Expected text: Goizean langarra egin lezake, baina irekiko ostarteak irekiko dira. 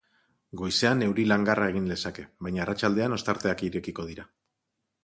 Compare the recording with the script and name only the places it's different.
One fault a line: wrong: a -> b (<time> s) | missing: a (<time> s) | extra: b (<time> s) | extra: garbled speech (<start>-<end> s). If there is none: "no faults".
extra: euri (1.1 s)
wrong: irekiko -> arratsaldean (2.6 s)